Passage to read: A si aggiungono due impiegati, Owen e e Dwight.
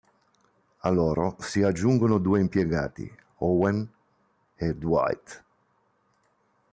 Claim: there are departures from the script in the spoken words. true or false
true